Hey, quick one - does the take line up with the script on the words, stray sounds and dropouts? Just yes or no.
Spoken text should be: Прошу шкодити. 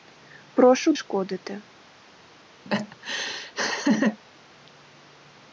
no